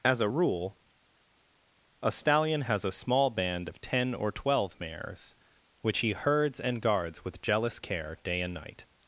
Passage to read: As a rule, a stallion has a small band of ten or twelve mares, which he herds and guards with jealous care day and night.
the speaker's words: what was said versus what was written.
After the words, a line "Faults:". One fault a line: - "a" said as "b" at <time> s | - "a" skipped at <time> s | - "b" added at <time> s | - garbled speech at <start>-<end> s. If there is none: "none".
As a rule, a stallion has a small band of ten or twelve mares, which he herds and guards with jealous care day and night.
Faults:
none